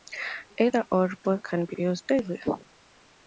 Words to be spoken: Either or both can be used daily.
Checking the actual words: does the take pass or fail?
fail